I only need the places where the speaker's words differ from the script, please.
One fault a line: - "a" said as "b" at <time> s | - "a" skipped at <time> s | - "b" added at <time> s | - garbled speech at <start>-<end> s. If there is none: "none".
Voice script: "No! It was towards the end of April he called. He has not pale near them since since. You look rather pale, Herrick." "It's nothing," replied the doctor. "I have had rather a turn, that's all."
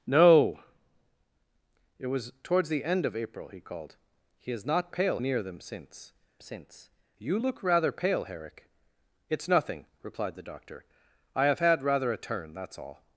none